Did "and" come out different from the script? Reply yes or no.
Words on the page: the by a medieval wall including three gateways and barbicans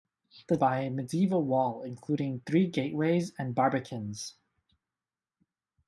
no